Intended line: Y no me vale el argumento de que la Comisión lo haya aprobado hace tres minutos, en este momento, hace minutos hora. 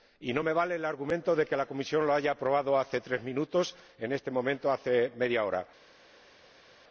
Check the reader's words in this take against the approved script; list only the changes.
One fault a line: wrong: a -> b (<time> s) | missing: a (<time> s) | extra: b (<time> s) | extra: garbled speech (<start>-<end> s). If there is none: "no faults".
wrong: minutos -> media (5.2 s)